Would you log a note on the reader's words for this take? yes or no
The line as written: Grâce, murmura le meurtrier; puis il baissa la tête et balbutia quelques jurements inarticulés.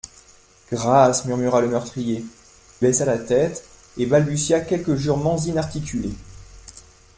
yes